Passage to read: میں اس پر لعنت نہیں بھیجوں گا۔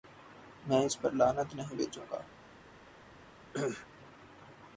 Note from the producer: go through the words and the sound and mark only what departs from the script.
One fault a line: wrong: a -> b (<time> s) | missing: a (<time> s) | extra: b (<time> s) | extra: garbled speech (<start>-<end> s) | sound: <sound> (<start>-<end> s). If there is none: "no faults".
sound: cough (3.5-3.9 s)